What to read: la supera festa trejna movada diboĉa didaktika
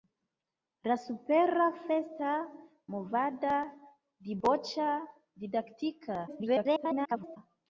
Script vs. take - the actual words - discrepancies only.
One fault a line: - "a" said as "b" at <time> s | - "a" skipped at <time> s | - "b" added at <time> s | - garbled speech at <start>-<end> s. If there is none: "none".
- "trejna" skipped at 2.3 s
- garbled speech at 6.3-7.4 s